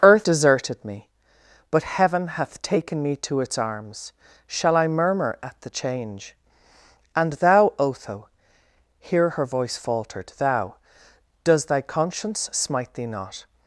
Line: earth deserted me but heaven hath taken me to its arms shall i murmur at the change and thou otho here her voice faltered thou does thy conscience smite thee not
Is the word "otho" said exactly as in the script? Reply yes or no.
yes